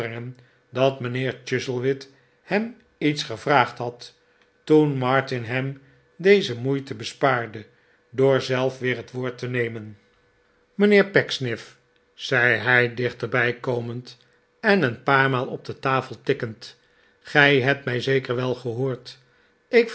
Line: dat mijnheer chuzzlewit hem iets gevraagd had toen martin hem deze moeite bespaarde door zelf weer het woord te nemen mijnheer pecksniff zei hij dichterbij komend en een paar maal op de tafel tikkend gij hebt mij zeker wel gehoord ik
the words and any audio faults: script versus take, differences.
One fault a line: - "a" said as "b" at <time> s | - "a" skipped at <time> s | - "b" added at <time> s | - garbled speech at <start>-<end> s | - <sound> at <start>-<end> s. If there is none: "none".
none